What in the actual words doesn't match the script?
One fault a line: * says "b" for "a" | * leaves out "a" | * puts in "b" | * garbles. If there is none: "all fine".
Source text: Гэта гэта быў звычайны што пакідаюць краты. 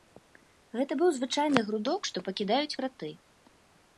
* leaves out "гэта"
* puts in "грудок"